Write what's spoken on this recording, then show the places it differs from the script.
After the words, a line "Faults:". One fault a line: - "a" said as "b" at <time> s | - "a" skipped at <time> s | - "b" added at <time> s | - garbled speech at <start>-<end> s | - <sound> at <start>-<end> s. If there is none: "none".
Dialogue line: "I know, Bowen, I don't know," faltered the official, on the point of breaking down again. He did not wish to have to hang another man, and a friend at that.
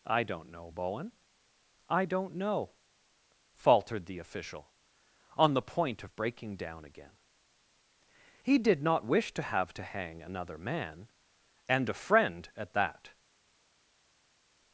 "I don't know, Bowen, I don't know," faltered the official, on the point of breaking down again. He did not wish to have to hang another man, and a friend at that.
Faults:
- "don't" added at 0.2 s